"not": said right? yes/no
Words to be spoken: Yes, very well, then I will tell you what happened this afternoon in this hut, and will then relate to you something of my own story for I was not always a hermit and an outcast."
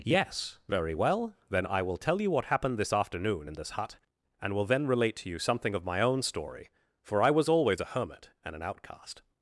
no